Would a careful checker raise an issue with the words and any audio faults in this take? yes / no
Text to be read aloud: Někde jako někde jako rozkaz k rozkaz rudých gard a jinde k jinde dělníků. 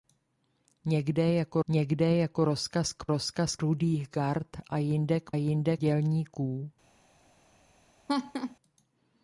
yes